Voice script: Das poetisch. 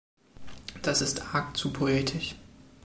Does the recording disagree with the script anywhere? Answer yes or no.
yes